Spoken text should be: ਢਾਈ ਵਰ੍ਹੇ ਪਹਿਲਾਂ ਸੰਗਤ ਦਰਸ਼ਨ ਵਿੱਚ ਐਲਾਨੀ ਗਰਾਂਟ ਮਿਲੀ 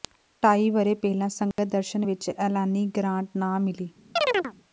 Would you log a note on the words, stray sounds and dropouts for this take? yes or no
yes